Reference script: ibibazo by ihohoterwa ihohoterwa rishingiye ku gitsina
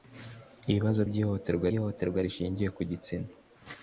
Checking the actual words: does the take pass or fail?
pass